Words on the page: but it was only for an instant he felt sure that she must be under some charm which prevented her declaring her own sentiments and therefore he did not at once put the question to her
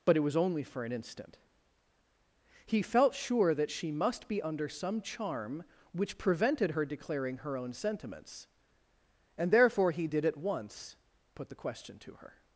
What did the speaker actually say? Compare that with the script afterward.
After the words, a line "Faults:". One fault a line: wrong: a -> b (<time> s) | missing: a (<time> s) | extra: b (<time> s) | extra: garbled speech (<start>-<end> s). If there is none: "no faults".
but it was only for an instant he felt sure that she must be under some charm which prevented her declaring her own sentiments and therefore he did at once put the question to her
Faults:
missing: not (10.2 s)